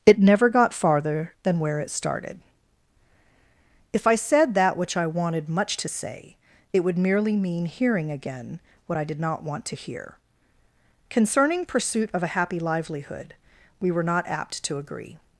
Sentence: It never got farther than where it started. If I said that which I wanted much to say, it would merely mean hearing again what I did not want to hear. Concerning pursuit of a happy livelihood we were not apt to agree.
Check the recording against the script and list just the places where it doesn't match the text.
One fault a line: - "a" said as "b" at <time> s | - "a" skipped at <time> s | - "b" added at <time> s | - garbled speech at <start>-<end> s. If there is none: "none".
none